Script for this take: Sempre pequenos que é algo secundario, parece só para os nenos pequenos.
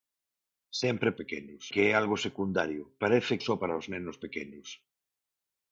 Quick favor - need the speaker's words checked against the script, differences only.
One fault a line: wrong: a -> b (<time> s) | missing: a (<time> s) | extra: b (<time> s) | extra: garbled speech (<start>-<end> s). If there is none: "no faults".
no faults